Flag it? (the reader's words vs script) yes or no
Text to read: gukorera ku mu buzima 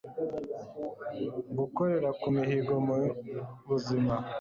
yes